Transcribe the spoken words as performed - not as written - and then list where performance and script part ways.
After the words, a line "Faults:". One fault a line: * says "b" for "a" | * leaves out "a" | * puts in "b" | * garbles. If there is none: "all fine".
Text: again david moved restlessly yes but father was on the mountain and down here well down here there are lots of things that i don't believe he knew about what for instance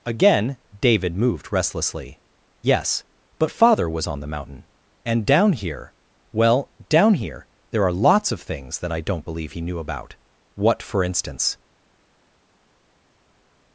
again david moved restlessly yes but father was on the mountain and down here well down here there are lots of things that i don't believe he knew about what for instance
Faults:
all fine